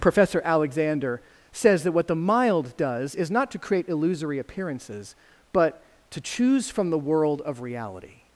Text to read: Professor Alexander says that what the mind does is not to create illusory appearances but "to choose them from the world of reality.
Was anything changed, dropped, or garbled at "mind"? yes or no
yes